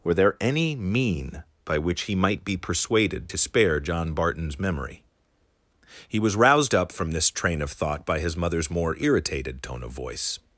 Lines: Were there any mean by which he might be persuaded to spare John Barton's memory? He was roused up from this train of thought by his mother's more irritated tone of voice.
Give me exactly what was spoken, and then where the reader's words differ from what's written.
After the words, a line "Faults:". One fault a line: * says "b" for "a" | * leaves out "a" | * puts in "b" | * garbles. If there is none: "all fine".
Were there any mean by which he might be persuaded to spare John Barton's memory? He was roused up from this train of thought by his mother's more irritated tone of voice.
Faults:
all fine